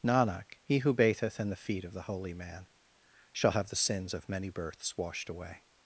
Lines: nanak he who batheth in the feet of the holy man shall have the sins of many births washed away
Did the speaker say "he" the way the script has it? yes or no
yes